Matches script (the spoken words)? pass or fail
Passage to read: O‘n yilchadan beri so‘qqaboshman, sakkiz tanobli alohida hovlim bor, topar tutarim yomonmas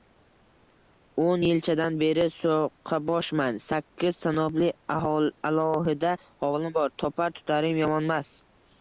pass